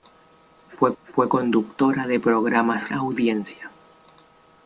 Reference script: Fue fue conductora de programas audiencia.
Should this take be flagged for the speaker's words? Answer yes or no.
no